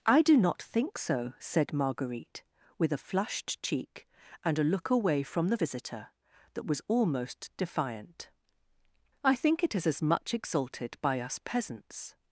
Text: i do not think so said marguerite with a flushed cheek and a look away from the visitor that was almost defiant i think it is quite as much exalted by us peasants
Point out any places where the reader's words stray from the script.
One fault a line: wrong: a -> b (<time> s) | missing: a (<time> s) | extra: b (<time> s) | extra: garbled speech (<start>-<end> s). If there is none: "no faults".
missing: quite (9.9 s)